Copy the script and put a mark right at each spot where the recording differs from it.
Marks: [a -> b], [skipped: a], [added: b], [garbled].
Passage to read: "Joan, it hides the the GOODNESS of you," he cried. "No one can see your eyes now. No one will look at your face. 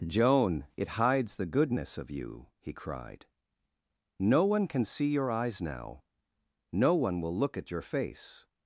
"Joan, it hides the [skipped: the] GOODNESS of you," he cried. "No one can see your eyes now. No one will look at your face.